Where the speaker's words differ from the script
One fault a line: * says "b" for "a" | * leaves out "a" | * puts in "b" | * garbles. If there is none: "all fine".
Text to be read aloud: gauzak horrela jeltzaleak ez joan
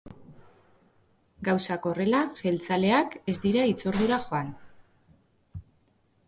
* puts in "dira hitzordura"